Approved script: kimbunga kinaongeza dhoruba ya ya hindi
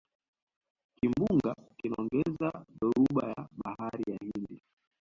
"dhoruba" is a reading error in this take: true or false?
false